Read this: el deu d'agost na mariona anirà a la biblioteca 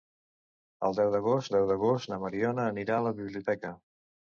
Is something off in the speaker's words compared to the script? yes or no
yes